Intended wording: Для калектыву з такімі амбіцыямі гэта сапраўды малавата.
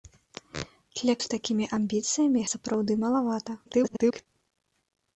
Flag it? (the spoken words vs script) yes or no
yes